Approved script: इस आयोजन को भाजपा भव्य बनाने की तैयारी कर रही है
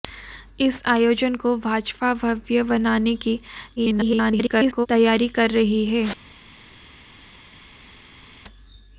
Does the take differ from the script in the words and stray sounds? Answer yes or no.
yes